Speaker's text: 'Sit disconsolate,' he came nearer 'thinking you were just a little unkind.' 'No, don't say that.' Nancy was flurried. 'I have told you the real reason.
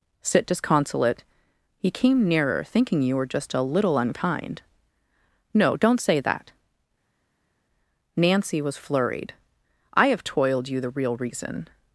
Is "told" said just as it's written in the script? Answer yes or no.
no